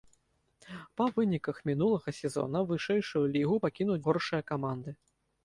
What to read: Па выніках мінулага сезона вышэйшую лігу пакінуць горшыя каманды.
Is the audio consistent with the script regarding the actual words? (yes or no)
yes